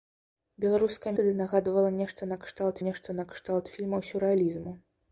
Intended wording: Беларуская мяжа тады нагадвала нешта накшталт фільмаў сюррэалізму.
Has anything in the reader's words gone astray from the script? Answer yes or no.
yes